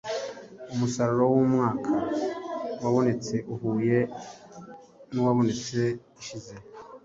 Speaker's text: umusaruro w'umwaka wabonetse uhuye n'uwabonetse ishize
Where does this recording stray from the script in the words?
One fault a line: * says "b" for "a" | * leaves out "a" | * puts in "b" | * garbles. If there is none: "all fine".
all fine